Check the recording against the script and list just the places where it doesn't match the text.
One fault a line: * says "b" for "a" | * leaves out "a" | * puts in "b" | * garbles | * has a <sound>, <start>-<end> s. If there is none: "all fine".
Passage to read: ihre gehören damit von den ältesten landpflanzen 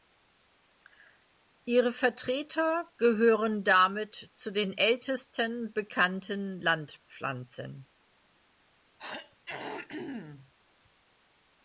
* puts in "vertreter"
* says "zu" for "von"
* puts in "bekannten"
* has a throat clearing, 9.0-10.5 s